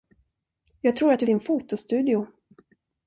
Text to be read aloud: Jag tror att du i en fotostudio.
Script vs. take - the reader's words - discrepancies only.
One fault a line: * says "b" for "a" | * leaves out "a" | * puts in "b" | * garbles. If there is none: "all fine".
all fine